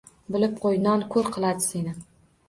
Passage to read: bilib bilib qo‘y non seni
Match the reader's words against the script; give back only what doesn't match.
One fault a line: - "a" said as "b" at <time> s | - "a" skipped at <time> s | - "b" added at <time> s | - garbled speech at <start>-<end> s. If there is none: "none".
- "bilib" skipped at 0.5 s
- "ko‘r qiladi" added at 1.1 s